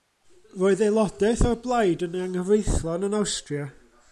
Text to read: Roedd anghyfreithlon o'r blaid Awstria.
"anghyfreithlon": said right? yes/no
no